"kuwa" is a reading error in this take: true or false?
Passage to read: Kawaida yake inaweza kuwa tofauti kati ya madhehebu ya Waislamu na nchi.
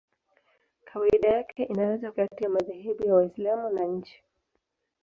true